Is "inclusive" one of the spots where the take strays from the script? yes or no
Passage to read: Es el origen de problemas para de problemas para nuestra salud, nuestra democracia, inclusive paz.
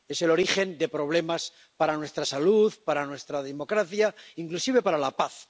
yes